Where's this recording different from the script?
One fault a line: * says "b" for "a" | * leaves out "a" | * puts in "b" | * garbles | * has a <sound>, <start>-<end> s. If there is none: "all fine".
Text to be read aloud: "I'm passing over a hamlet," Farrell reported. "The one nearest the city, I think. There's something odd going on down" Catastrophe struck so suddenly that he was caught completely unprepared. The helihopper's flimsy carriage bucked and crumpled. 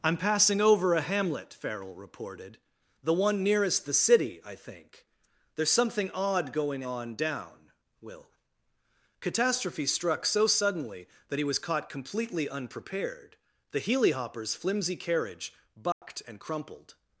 * puts in "will"
* has a dropout, 15.9-16.0 s